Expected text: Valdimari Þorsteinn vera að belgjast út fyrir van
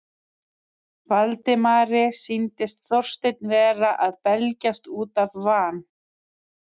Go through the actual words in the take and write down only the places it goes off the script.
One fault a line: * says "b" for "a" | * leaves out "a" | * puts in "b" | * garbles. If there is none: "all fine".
* puts in "sýndist"
* says "af" for "fyrir"